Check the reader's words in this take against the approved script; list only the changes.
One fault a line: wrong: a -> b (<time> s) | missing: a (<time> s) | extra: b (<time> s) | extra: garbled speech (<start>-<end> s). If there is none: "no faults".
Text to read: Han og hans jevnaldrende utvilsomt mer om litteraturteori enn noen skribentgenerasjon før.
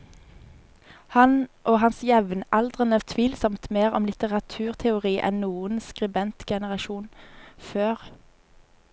no faults